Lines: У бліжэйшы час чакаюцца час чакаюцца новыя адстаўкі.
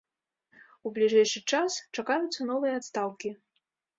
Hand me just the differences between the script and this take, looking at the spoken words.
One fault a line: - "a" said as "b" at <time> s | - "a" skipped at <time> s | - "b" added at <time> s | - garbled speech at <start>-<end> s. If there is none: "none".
- "час чакаюцца" skipped at 2.4 s